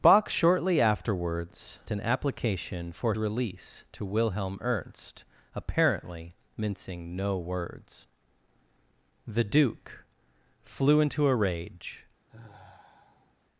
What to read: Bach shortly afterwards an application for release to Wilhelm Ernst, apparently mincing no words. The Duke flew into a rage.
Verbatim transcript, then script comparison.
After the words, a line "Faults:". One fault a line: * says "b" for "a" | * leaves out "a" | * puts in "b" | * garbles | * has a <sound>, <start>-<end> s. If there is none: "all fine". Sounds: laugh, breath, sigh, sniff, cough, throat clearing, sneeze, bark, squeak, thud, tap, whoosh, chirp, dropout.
Bach shortly afterwards an application for release to Wilhelm Ernst, apparently mincing no words. The Duke flew into a rage.
Faults:
* has a sigh, 12.3-13.3 s